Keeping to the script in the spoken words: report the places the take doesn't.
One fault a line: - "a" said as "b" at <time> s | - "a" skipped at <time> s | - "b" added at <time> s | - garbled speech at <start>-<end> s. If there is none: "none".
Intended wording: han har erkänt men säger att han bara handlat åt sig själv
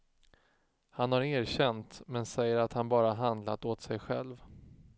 none